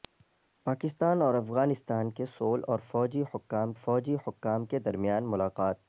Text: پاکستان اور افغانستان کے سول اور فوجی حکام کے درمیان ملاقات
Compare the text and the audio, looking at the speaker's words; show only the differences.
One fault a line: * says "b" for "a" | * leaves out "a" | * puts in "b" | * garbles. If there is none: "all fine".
* puts in "فوجی حکام"